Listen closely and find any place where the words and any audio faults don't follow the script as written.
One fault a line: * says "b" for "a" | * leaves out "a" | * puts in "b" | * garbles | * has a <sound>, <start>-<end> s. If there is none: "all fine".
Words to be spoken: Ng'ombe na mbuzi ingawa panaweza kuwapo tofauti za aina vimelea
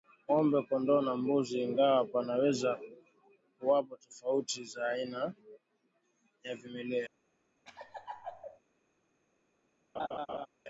* puts in "kondoo"
* puts in "ya"
* has a laugh, 7.7-8.6 s
* has a laugh, 10.0-10.5 s